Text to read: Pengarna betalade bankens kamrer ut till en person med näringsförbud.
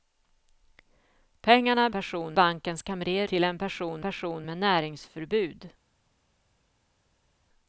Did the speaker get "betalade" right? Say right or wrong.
wrong